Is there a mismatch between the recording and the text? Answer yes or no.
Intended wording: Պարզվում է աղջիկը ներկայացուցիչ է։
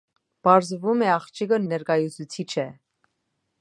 no